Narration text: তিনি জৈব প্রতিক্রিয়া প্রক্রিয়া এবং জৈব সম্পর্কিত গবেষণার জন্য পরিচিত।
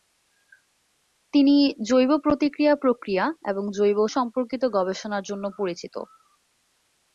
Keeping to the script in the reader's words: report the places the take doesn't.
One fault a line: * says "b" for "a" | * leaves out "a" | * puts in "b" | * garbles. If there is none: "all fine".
all fine